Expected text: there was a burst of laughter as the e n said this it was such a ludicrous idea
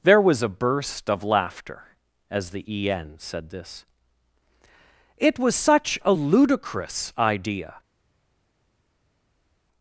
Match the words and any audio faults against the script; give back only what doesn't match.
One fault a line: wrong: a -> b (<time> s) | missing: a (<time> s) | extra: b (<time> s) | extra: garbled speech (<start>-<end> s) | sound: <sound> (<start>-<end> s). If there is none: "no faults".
no faults